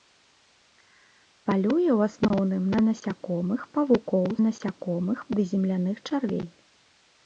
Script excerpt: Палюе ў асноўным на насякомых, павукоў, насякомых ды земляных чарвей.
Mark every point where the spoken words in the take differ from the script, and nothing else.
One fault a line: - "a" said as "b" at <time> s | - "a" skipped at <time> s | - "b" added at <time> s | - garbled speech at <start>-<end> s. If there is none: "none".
none